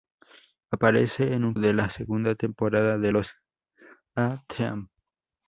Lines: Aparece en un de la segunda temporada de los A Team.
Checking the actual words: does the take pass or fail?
pass